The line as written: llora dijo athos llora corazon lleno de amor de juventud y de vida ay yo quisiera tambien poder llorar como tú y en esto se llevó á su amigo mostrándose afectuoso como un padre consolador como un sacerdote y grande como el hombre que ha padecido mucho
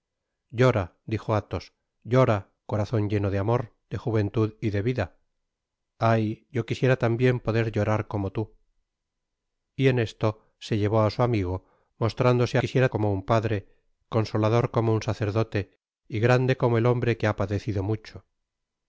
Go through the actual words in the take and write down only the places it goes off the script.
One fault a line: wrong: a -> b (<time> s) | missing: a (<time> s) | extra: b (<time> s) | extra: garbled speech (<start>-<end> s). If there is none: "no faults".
wrong: afectuoso -> quisiera (12.6 s)